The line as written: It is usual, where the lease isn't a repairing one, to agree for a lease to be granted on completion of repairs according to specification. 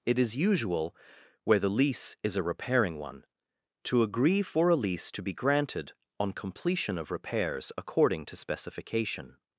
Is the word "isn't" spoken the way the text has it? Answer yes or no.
no